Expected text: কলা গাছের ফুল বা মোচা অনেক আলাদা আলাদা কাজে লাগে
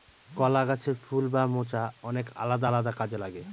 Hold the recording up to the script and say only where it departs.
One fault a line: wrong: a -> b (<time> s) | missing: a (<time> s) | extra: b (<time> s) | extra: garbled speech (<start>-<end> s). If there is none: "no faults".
no faults